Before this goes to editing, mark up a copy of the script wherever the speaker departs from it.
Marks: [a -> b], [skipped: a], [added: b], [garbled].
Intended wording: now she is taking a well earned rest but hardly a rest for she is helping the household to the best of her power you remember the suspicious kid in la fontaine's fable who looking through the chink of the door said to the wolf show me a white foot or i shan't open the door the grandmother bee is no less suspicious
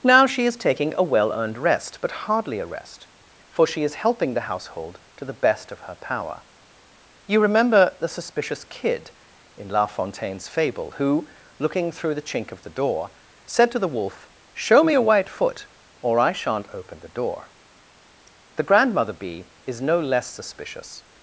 now she is taking a well earned rest but hardly a rest for she is helping the household to the best of her power you remember the suspicious kid in la fontaine's fable who looking through the chink of the door said to the wolf show me a white foot or i shan't open the door the grandmother bee is no less suspicious